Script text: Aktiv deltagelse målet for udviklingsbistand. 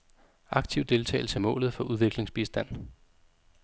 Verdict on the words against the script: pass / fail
pass